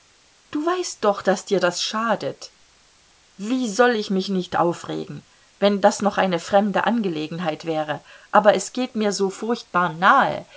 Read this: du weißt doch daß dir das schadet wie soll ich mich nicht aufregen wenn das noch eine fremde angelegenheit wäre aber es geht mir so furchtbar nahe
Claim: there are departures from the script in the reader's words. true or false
false